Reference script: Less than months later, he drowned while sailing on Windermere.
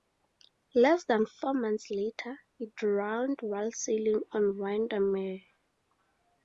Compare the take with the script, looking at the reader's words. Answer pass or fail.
fail